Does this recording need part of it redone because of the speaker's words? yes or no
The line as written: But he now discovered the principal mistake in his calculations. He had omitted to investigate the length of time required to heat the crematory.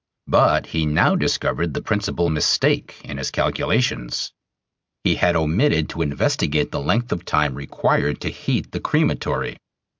no